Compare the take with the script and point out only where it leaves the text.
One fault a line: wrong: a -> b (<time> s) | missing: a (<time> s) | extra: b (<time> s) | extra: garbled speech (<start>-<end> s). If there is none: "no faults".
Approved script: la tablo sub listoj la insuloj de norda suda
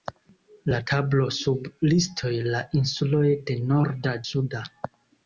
no faults